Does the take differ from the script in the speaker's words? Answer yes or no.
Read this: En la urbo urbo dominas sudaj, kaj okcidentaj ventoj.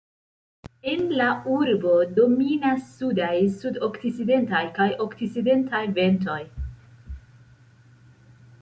yes